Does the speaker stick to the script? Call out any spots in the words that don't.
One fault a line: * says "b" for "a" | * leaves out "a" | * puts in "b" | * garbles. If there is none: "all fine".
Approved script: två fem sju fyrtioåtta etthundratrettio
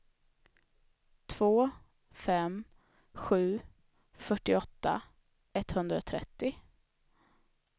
all fine